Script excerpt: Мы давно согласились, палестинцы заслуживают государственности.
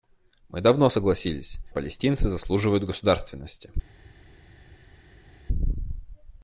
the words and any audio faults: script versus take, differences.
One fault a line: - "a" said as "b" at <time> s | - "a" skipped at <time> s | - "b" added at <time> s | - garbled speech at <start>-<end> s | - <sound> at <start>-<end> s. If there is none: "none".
none